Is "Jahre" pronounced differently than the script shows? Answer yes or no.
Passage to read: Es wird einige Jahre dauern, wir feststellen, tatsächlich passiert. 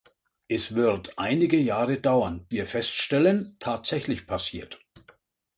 no